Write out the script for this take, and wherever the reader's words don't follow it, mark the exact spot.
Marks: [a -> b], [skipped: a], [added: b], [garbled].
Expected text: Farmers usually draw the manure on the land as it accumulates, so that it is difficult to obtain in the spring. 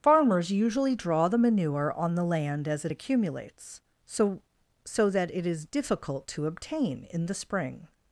Farmers usually draw the manure on the land as it accumulates, so [added: so] that it is difficult to obtain in the spring.